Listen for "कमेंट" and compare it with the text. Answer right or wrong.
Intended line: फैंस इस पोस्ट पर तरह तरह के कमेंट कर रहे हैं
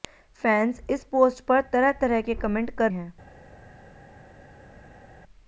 right